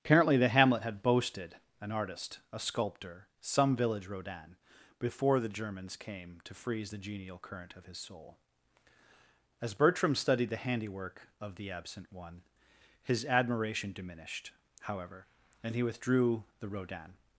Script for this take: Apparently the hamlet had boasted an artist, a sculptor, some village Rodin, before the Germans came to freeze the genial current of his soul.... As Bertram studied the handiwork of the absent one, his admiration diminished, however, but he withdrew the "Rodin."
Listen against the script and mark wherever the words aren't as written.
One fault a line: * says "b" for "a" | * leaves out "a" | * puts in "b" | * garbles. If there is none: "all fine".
* says "and" for "but"